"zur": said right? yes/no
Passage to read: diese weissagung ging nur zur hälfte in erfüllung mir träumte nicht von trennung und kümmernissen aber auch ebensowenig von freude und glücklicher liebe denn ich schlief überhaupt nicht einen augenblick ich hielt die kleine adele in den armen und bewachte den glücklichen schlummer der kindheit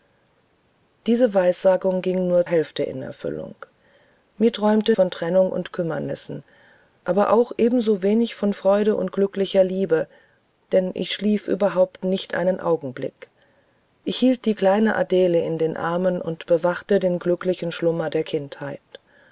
no